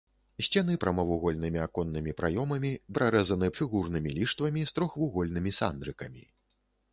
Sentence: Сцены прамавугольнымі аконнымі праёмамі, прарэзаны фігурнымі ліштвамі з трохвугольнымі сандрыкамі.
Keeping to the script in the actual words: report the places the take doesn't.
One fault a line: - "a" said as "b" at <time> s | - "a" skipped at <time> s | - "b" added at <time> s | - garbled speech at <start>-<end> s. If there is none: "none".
none